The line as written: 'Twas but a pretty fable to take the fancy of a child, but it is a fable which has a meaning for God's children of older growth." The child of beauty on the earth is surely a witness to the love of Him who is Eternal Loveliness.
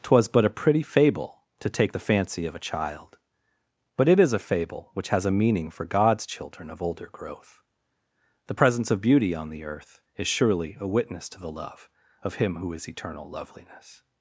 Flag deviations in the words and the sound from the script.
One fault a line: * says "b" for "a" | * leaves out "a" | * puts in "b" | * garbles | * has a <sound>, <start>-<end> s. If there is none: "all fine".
* says "presence" for "child"